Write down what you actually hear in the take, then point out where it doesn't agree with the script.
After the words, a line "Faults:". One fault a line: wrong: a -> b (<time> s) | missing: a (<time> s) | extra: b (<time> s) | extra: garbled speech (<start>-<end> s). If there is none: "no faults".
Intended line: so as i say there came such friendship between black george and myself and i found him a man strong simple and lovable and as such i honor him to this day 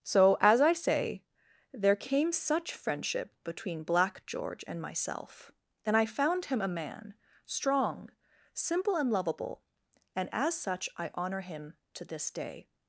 so as i say there came such friendship between black george and myself and i found him a man strong simple and lovable and as such i honor him to this day
Faults:
no faults